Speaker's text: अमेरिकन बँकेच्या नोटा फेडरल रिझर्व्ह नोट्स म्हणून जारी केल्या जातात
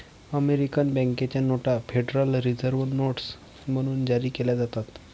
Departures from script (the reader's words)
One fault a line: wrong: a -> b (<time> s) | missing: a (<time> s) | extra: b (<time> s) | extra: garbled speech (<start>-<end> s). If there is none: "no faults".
no faults